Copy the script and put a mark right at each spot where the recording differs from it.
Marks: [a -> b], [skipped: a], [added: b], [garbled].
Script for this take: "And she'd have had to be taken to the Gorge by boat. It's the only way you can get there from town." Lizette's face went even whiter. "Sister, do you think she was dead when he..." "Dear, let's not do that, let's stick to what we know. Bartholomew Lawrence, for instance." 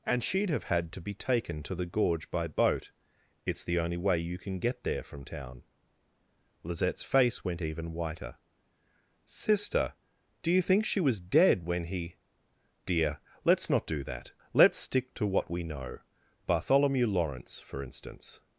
"And she'd have had to be taken to the Gorge by boat. It's the only way you can get there from town." Lizette's face went even whiter. "Sister, do you think she was dead when he..." "Dear, let's not do that, let's stick to what we know. Bartholomew Lawrence, for instance."